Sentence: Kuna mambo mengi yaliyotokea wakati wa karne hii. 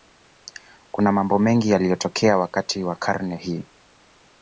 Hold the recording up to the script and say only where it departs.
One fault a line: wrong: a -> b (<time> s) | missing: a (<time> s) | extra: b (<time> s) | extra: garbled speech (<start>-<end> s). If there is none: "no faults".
no faults